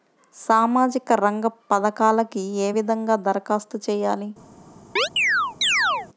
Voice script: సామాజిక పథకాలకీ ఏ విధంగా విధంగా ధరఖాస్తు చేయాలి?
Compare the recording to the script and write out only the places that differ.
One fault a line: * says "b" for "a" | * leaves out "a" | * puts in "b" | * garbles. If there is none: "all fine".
* puts in "రంగ"
* leaves out "విధంగా"